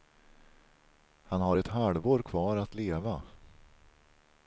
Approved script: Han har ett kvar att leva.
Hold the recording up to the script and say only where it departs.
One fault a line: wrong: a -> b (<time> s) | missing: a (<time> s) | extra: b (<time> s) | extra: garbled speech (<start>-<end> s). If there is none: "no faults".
extra: halvår (1.7 s)